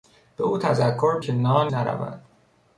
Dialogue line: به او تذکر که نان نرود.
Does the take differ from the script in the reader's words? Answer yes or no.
no